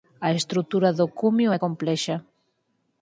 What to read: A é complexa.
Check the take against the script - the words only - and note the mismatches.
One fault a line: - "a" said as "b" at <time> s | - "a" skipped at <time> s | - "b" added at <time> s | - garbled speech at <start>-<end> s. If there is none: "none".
- "estrutura do cumio" added at 0.4 s